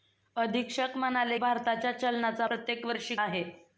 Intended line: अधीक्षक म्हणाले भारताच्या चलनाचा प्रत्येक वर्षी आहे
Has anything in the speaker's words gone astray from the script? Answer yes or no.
no